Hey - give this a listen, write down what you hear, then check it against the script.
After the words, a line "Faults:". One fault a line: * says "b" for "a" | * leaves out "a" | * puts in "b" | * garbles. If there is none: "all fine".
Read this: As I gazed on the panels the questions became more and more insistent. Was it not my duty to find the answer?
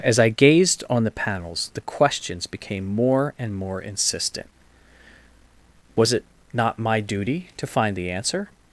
As I gazed on the panels the questions became more and more insistent. Was it not my duty to find the answer?
Faults:
all fine